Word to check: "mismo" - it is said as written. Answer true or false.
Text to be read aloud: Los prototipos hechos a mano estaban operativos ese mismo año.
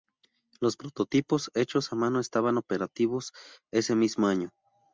true